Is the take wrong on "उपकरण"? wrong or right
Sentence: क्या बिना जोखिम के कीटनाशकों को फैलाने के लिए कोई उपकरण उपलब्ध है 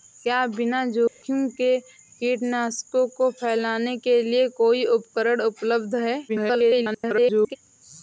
right